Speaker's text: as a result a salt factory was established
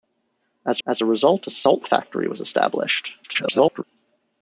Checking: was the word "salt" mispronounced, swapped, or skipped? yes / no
no